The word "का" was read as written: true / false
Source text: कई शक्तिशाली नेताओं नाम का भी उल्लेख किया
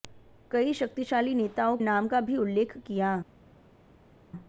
true